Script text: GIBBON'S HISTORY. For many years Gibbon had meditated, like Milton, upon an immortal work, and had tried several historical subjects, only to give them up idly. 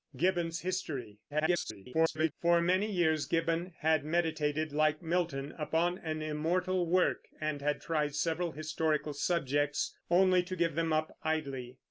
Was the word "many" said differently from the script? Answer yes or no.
no